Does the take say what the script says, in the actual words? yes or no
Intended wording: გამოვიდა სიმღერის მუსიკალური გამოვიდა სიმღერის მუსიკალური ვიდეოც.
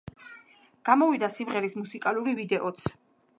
no